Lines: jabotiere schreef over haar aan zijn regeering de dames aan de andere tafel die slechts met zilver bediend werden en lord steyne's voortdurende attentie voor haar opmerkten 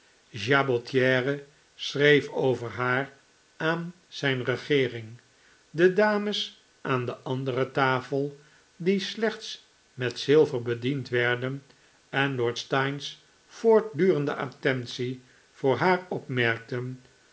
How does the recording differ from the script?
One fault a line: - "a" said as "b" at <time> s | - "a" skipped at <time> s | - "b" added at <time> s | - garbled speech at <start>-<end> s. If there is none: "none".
none